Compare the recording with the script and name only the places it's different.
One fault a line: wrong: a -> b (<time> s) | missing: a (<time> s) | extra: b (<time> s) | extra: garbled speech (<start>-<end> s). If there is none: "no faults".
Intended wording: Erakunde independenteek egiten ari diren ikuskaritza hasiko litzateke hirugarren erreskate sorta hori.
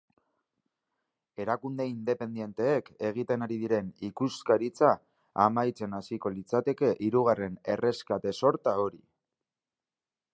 extra: amaitzen (5.5 s)